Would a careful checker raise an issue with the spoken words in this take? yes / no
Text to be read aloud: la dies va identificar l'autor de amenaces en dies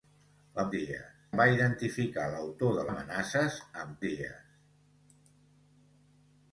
no